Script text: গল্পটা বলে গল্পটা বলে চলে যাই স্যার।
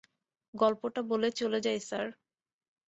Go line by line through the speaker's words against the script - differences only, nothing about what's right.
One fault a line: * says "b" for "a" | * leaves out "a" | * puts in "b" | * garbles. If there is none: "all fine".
* leaves out "গল্পটা বলে"